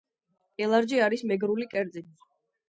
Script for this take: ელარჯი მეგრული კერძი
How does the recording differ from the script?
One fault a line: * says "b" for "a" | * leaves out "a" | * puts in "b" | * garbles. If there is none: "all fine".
* puts in "არის"